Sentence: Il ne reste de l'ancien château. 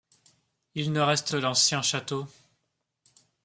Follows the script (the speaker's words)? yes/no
yes